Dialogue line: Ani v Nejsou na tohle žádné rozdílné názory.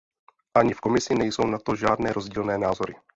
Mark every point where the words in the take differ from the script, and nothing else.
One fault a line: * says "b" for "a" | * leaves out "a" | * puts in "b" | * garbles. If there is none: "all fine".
* puts in "Komisi"
* says "to" for "tohle"